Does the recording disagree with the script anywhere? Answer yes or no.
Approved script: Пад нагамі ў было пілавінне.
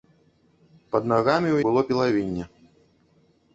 no